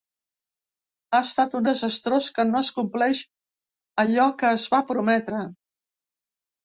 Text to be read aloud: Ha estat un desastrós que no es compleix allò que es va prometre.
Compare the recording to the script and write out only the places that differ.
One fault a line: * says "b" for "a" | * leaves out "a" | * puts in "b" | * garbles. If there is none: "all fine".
all fine